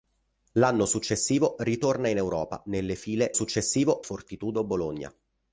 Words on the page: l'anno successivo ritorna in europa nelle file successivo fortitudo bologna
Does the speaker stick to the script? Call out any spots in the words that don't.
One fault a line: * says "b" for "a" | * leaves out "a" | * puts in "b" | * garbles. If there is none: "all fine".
all fine